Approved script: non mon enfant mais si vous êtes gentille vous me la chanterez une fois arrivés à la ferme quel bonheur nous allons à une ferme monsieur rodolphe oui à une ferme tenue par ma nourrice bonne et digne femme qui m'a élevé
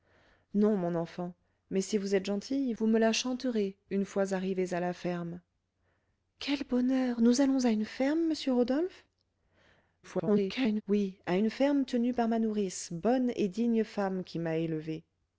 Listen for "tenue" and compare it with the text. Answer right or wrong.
right